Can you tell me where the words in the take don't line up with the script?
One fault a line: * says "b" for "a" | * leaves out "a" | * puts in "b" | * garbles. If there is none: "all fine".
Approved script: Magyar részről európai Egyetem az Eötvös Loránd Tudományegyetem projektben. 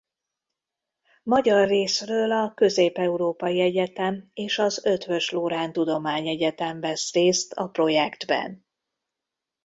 * puts in "a Közép"
* puts in "és"
* puts in "vesz részt a"